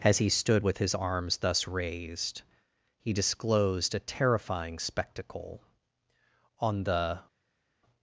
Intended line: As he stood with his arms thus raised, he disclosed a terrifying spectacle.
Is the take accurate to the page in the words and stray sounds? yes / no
no